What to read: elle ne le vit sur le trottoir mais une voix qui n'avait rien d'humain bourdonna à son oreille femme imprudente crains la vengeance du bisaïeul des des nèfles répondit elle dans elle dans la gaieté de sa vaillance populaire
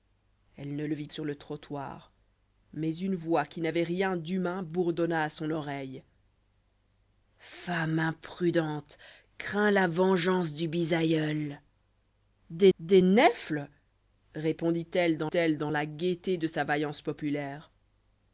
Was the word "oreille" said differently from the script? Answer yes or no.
no